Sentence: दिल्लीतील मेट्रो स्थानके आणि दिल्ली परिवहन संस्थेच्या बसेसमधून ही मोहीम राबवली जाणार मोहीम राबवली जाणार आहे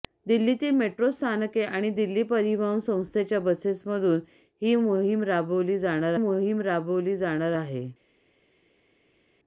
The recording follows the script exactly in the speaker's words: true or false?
true